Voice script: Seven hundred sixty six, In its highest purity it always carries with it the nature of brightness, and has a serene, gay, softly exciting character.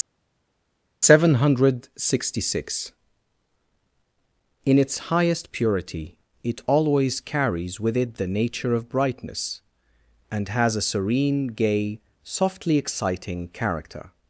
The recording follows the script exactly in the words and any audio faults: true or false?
true